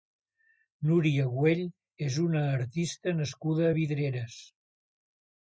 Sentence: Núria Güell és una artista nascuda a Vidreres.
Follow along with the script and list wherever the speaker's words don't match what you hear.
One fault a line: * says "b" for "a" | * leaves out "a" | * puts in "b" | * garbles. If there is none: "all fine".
all fine